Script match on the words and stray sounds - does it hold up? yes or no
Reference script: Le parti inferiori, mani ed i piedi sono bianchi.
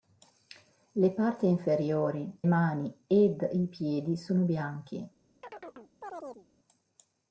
no